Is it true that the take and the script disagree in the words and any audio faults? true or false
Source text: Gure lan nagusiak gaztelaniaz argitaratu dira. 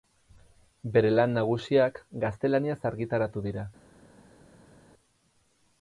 true